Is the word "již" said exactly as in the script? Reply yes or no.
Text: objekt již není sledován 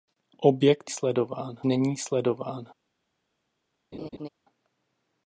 no